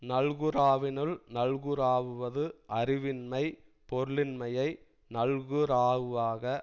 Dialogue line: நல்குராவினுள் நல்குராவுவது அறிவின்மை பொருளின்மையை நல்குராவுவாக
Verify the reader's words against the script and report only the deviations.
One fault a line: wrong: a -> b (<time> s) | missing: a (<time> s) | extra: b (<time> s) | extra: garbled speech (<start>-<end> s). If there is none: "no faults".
no faults